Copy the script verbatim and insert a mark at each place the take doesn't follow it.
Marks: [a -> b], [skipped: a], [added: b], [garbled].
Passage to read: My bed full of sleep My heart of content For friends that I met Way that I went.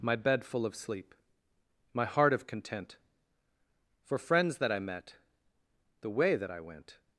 My bed full of sleep My heart of content For friends that I met [added: The] Way that I went.